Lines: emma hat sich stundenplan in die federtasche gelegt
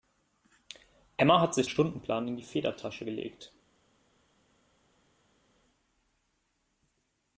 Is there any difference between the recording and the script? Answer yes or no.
no